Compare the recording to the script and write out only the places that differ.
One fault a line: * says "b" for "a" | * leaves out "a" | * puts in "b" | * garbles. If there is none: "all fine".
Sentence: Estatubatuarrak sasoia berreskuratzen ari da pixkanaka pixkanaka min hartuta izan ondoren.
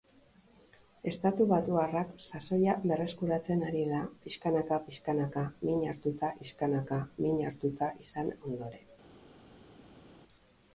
* puts in "pixkanaka min hartuta"